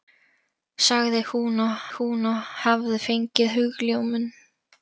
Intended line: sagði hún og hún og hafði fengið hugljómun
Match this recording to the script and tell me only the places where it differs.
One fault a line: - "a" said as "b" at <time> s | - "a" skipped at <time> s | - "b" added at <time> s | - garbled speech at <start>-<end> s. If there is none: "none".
none